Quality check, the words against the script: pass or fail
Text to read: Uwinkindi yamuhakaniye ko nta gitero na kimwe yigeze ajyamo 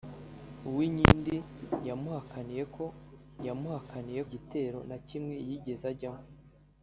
fail